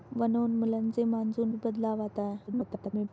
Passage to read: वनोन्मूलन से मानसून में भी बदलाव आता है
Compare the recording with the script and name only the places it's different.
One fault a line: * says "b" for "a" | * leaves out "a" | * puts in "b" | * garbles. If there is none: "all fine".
* leaves out "में"
* garbles